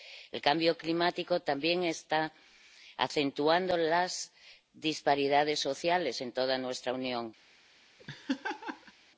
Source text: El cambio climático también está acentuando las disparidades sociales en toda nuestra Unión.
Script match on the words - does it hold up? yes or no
yes